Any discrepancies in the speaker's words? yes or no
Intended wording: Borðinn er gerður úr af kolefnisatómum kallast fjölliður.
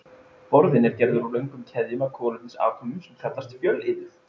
yes